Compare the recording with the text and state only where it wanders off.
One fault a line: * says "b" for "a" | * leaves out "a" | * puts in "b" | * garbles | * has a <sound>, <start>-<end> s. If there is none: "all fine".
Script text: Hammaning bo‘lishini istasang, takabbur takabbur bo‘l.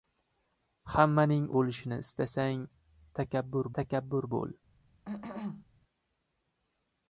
* has a cough, 5.0-5.7 s